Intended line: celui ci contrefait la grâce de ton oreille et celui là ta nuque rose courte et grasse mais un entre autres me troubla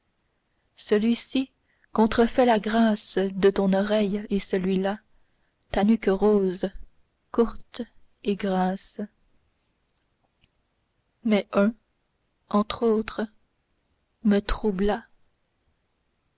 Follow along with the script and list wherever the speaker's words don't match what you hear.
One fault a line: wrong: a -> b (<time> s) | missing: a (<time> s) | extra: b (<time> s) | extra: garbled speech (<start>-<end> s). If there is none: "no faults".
no faults